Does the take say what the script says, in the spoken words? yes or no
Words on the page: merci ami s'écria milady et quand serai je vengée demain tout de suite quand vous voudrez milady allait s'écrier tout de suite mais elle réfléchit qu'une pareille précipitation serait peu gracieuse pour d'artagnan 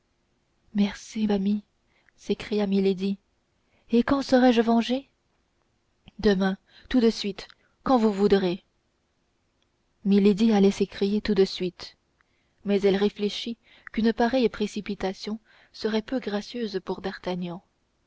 yes